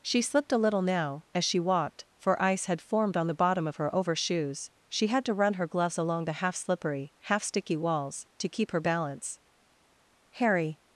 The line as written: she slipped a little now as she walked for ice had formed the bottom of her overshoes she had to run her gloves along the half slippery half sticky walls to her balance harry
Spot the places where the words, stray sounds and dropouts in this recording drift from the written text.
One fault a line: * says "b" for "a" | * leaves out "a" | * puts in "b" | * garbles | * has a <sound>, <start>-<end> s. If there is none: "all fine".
* puts in "on"
* puts in "keep"